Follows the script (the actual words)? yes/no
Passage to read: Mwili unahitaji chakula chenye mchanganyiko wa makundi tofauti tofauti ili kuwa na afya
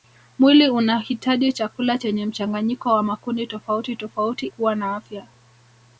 no